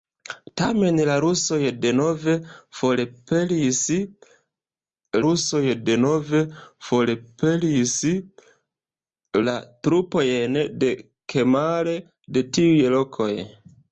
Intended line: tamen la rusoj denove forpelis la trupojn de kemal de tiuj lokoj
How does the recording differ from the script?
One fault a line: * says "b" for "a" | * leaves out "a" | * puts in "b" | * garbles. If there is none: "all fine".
* puts in "rusoj denove forpelis"